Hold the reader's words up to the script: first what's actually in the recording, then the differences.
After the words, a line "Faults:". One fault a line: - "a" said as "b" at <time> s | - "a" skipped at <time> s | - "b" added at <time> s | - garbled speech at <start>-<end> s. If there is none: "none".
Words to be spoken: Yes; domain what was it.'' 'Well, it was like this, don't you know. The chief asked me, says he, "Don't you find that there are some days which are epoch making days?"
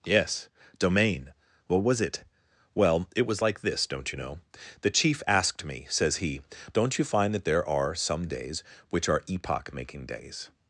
Yes; domain what was it.'' 'Well, it was like this, don't you know. The chief asked me, says he, "Don't you find that there are some days which are epoch making days?"
Faults:
none